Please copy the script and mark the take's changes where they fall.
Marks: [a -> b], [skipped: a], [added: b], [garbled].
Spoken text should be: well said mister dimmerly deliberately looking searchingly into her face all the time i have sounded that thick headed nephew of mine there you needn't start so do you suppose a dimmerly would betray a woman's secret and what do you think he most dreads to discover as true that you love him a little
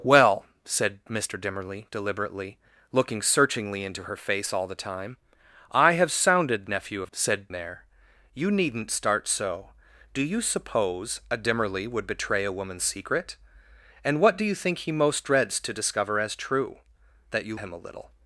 well said mister dimmerly deliberately looking searchingly into her face all the time i have sounded [skipped: that thick headed] nephew of [mine -> said] there you needn't start so do you suppose a dimmerly would betray a woman's secret and what do you think he most dreads to discover as true that you [skipped: love] him a little